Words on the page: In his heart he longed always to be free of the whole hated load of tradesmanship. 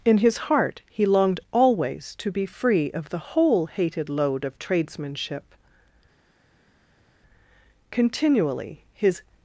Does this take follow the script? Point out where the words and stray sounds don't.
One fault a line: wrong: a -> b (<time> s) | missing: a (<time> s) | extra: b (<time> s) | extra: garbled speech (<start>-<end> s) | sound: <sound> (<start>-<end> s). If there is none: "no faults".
extra: Continually his (7.9 s)